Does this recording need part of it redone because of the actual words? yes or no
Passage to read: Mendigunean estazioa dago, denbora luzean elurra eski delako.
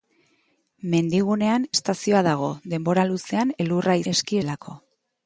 no